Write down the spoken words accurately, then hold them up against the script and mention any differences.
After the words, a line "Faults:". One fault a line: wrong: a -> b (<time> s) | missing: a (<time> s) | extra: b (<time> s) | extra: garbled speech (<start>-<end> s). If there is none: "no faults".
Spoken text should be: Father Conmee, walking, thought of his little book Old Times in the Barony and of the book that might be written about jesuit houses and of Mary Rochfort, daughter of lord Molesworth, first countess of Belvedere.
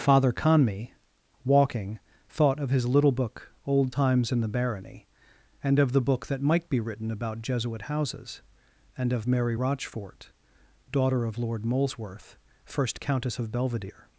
Father Conmee, walking, thought of his little book Old Times in the Barony and of the book that might be written about jesuit houses and of Mary Rochfort, daughter of lord Molesworth, first countess of Belvedere.
Faults:
no faults